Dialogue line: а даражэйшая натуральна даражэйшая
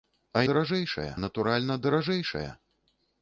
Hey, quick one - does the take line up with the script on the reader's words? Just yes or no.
yes